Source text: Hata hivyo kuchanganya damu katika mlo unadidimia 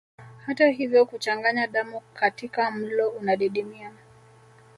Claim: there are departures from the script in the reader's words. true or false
false